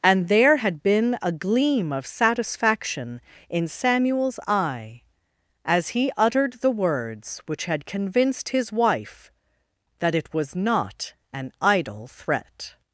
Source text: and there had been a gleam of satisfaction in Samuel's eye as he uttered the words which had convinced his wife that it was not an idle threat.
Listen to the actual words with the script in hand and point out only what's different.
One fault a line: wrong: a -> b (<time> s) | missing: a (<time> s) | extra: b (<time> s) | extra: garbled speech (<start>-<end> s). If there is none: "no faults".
no faults